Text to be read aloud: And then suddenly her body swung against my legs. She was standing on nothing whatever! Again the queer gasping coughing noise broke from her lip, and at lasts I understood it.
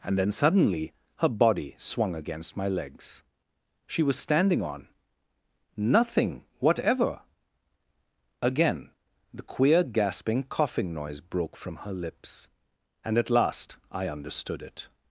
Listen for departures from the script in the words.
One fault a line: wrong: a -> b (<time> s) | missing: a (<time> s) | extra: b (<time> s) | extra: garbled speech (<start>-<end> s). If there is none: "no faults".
wrong: lip -> lips (11.9 s)
wrong: lasts -> last (13.3 s)